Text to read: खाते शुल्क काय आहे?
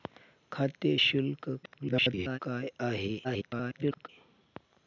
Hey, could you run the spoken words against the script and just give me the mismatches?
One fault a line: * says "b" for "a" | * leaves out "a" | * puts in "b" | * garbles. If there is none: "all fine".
* garbles
* garbles